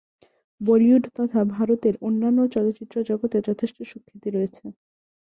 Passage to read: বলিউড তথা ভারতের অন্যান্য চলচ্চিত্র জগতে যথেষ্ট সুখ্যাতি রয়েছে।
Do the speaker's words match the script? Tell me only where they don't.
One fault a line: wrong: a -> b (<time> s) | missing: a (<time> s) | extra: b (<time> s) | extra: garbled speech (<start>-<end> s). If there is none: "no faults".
no faults